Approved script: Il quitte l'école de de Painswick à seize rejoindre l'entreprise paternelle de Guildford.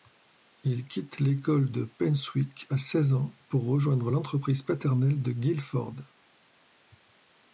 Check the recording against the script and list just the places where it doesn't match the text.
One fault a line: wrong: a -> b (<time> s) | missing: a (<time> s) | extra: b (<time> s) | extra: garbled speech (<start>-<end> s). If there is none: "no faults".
missing: de (1.8 s)
extra: ans pour (3.1 s)